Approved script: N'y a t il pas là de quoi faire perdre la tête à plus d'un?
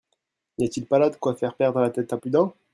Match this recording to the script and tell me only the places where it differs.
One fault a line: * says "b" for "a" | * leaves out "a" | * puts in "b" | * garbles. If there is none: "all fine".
all fine